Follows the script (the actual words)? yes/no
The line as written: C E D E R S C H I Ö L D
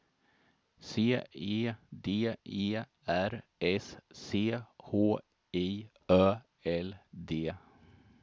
yes